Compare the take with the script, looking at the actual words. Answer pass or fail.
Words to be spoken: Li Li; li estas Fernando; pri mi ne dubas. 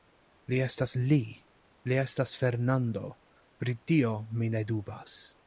fail